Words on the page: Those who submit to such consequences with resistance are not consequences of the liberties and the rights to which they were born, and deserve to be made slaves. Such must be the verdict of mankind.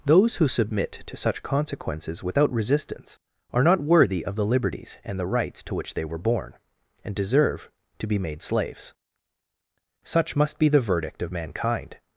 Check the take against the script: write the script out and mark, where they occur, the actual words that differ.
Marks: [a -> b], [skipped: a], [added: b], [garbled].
Those who submit to such consequences [with -> without] resistance are not [consequences -> worthy] of the liberties and the rights to which they were born, and deserve to be made slaves. Such must be the verdict of mankind.